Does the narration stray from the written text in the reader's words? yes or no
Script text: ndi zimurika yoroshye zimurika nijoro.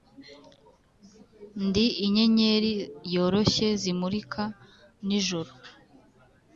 yes